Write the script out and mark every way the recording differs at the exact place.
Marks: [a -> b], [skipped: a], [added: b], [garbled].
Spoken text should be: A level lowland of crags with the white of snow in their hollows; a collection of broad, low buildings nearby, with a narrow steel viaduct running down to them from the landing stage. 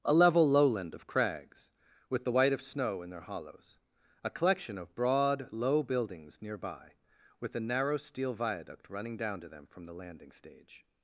A level lowland of crags with the white of snow in their hollows; a collection of broad, low buildings nearby, with a narrow steel viaduct running down to them from the landing stage.